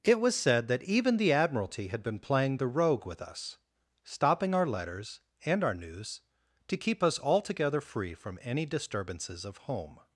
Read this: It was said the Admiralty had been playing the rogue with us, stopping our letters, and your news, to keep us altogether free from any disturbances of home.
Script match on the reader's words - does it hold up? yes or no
no